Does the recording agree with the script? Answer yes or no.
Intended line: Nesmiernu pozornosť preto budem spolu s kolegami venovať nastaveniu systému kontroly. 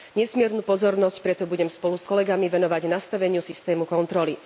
yes